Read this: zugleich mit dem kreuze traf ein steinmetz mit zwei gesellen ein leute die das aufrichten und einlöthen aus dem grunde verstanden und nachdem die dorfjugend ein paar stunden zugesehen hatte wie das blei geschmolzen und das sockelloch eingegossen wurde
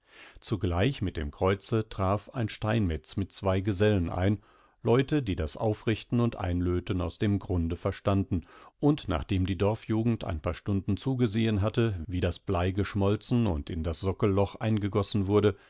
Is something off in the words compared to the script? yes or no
yes